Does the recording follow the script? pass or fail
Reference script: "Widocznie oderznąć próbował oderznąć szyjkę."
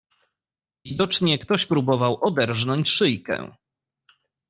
fail